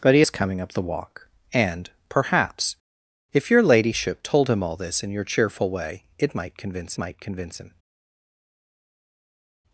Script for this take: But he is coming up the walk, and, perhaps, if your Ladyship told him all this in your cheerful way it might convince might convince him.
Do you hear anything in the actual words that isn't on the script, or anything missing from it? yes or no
no